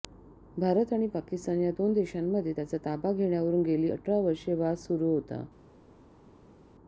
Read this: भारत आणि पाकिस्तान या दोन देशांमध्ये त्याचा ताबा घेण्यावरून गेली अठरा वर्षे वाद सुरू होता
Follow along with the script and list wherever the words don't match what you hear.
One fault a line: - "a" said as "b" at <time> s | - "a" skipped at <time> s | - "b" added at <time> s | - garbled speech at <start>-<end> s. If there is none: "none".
none